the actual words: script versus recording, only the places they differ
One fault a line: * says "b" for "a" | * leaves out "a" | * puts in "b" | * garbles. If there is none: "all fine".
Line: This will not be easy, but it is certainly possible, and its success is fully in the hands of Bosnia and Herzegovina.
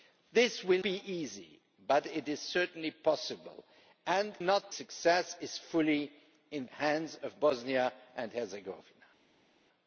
* leaves out "not"
* says "not" for "its"
* leaves out "the"